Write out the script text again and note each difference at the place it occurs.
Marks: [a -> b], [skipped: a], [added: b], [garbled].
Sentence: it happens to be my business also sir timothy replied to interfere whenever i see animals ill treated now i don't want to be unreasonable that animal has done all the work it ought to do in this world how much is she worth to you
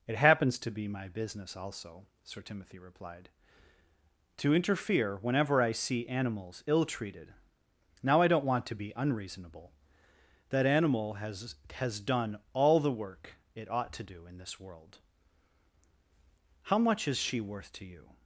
it happens to be my business also sir timothy replied to interfere whenever i see animals ill treated now i don't want to be unreasonable that animal has [added: has] done all the work it ought to do in this world how much is she worth to you